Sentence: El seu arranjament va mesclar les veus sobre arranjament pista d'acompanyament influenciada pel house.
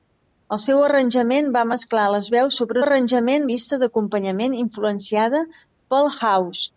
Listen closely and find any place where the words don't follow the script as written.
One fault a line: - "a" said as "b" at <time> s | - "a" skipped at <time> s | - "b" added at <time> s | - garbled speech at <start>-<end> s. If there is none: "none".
none